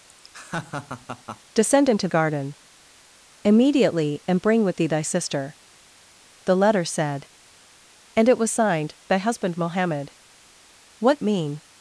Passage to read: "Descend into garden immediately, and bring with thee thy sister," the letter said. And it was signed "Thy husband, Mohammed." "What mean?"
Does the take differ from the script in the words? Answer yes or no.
no